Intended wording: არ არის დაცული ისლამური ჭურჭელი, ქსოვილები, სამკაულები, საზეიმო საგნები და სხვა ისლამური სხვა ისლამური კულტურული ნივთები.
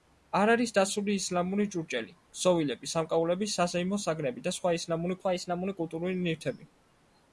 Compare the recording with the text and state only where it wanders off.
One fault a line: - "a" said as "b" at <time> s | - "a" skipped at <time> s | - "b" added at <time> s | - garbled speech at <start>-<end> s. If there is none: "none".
none